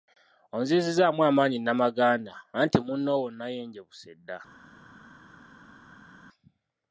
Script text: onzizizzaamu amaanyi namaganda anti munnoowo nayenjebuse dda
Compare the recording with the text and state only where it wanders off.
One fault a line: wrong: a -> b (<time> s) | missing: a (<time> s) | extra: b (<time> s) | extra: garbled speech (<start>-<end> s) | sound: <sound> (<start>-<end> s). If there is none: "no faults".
no faults